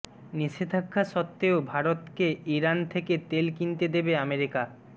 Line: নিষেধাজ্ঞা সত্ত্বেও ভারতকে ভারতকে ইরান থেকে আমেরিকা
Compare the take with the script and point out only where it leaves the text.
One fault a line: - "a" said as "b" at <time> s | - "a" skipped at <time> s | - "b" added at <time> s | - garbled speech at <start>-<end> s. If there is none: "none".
- "ভারতকে" skipped at 2.3 s
- "তেল কিনতে দেবে" added at 3.3 s